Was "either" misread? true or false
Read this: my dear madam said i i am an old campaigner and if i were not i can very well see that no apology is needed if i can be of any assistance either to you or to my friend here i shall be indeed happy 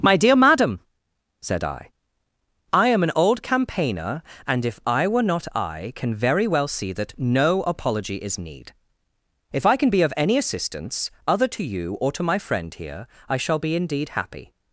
true